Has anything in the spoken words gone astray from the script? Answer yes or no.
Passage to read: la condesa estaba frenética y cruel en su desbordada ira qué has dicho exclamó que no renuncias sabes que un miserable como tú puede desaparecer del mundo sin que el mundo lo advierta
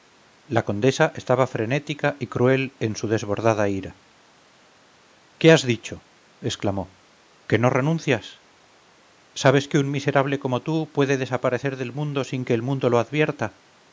no